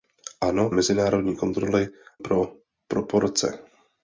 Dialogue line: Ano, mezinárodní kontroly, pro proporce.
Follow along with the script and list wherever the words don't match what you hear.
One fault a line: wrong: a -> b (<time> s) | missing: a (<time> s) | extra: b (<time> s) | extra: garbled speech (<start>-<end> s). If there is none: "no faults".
no faults